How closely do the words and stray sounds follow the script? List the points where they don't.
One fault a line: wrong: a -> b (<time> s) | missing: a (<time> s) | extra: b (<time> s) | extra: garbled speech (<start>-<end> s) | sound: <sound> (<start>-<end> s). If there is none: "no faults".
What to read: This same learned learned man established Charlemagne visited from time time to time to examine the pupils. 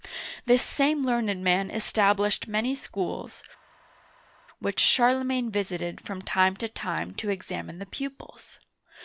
missing: learned (1.4 s)
extra: many schools which (2.5 s)
missing: time (6.5 s)